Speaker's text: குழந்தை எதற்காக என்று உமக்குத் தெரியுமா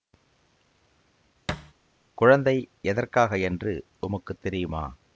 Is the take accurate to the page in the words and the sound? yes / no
no